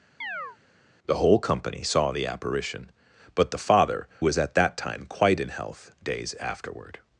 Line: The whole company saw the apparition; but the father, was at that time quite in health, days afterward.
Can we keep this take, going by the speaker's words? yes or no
yes